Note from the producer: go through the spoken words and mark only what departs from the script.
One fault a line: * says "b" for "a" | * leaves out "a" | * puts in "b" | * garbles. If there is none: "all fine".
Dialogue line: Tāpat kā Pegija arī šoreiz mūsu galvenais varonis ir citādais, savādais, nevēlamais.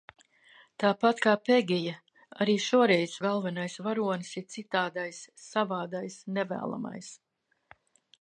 * leaves out "mūsu"